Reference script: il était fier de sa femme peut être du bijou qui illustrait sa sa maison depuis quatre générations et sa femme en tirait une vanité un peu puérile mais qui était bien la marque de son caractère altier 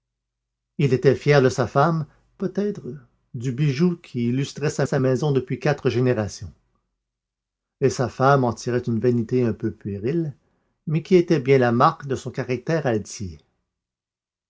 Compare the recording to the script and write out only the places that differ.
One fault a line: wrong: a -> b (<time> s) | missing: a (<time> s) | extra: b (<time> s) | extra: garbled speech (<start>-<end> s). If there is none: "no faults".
no faults